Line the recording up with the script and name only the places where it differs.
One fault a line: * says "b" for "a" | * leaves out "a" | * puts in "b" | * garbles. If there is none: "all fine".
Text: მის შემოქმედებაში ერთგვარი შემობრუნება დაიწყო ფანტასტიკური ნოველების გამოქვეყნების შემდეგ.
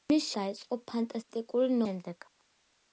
* leaves out "შემოქმედებაში ერთგვარი შემობრუნება"
* leaves out "ნოველების გამოქვეყნების"